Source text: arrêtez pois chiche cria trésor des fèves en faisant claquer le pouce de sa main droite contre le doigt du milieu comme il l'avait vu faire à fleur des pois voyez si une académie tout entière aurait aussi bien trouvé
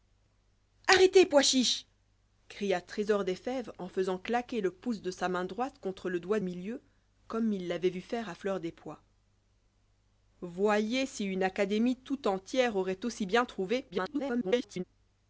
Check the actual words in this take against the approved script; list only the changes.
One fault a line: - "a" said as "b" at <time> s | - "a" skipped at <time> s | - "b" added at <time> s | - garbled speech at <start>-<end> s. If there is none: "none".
- "du" skipped at 6.4 s
- garbled speech at 13.9-14.8 s